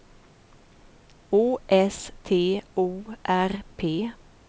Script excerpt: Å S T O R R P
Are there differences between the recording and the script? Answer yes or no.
yes